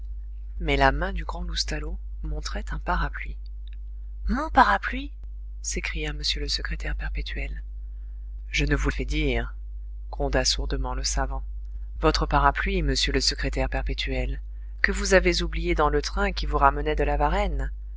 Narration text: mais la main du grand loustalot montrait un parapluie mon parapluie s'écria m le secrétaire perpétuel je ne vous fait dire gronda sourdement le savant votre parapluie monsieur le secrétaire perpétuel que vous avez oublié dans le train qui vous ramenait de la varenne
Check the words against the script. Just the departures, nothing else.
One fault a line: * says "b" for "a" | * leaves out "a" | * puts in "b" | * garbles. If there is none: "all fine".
all fine